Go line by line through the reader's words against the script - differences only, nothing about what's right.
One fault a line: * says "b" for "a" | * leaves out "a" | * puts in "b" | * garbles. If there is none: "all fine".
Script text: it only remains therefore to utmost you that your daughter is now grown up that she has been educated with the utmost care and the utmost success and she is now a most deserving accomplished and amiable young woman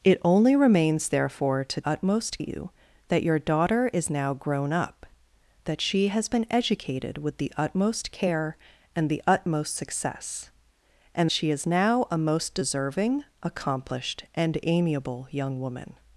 all fine